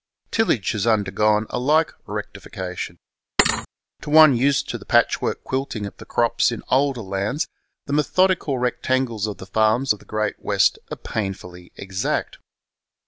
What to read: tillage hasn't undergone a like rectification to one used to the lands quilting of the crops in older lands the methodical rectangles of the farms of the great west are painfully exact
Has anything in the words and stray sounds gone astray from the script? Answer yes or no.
yes